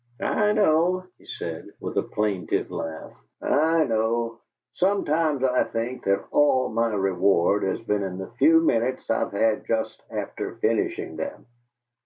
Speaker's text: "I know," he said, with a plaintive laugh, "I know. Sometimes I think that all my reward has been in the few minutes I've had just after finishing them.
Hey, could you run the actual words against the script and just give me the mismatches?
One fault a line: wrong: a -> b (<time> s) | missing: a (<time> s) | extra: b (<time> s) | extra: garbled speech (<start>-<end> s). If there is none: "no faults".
no faults